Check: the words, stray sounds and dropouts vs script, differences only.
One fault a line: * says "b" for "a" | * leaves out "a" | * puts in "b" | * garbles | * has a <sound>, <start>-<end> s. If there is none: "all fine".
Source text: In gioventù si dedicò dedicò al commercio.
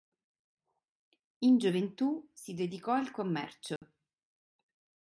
* leaves out "dedicò"
* has a dropout, 3.8-3.8 s